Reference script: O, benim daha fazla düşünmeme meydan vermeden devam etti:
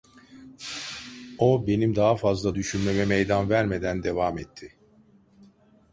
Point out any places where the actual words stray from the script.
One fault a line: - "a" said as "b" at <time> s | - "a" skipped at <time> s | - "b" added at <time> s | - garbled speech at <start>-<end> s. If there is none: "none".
none